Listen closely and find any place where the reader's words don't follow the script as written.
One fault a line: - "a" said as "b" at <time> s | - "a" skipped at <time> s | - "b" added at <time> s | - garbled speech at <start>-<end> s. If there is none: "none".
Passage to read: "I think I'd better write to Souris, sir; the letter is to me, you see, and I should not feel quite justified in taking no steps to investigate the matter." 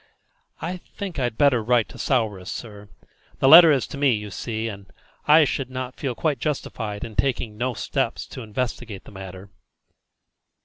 none